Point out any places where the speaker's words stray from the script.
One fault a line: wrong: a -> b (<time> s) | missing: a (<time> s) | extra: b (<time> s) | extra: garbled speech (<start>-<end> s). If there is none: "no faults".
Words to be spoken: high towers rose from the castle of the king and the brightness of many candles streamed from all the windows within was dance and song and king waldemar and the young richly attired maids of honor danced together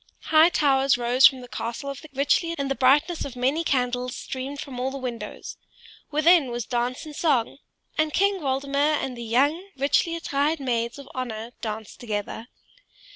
wrong: king -> richly (2.1 s)